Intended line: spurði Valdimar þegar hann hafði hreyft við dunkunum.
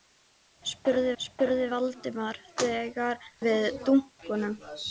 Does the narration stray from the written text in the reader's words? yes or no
yes